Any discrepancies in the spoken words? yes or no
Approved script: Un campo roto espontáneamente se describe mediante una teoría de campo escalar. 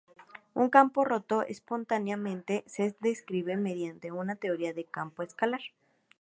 no